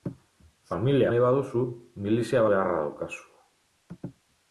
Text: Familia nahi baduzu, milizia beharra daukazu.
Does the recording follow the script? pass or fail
pass